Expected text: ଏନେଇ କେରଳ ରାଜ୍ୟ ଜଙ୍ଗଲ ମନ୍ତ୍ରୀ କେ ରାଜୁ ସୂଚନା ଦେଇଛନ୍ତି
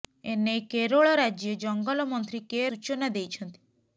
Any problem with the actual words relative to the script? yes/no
yes